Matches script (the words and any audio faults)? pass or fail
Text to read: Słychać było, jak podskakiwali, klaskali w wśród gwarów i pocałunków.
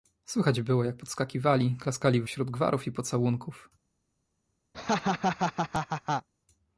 fail